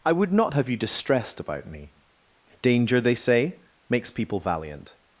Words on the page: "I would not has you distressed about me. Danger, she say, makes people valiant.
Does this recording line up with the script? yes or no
no